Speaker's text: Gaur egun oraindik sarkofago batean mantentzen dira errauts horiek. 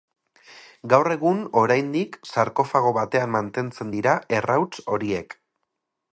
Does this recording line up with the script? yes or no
yes